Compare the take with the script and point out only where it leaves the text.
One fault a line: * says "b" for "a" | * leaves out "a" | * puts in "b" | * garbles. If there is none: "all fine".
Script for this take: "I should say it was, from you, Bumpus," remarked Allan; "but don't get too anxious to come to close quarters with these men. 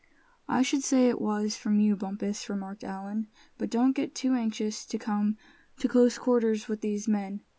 all fine